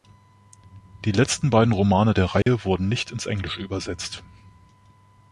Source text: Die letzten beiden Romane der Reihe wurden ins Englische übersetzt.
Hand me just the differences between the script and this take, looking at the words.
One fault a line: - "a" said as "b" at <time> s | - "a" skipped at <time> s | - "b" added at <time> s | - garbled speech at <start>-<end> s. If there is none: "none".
- "nicht" added at 2.9 s